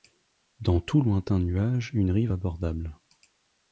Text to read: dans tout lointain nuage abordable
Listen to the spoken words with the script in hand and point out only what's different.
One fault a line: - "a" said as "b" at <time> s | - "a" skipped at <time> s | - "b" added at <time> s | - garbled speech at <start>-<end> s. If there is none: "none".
- "une rive" added at 1.9 s